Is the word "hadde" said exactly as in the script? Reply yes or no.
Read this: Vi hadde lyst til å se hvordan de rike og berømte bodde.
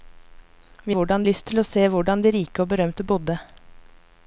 no